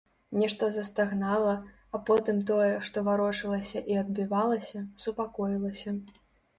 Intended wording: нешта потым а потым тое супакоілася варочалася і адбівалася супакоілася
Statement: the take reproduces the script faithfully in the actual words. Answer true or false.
false